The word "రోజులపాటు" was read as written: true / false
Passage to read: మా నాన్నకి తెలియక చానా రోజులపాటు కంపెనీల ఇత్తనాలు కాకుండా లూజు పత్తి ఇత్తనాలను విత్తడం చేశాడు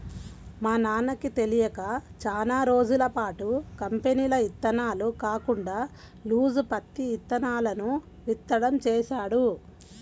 true